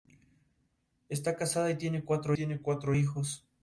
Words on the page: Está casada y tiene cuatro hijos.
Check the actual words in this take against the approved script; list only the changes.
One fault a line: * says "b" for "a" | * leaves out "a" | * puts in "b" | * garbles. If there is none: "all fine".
* puts in "tiene cuatro"